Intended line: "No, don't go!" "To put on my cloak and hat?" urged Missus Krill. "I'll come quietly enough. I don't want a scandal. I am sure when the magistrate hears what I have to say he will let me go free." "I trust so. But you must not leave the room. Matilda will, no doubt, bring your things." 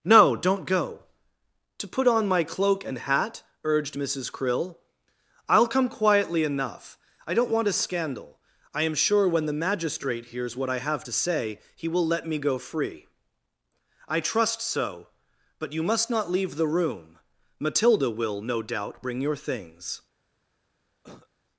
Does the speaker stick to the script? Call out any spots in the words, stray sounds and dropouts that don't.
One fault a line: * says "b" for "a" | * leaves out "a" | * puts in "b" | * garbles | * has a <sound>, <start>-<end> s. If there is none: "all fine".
* has a cough, 21.0-21.3 s